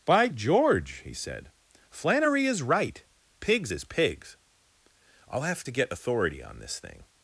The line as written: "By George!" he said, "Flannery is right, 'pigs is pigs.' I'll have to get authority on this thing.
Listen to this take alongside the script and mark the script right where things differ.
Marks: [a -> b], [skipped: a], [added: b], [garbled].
"By George!" he said, "Flannery is right, 'pigs is pigs.' I'll have to get authority on this thing.